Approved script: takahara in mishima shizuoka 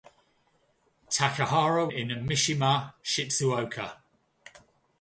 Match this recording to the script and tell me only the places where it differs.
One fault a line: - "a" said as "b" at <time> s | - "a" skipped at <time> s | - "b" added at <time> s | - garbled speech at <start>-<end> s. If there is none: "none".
none